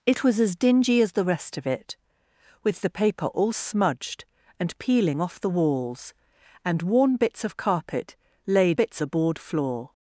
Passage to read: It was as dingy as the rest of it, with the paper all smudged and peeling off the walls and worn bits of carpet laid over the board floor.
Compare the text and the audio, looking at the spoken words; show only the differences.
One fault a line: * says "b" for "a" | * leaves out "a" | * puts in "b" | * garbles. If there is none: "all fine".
* says "bits" for "over"